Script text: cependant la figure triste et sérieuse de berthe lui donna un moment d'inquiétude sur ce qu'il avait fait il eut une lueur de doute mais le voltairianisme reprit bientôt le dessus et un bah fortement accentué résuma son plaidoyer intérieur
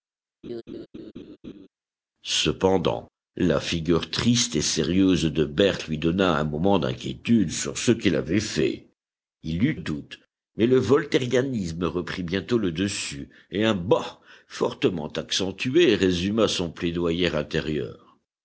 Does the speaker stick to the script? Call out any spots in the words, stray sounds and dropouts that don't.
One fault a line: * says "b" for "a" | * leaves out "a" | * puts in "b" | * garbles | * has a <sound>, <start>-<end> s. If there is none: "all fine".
* has a laugh, 0.4-1.7 s
* leaves out "une lueur de"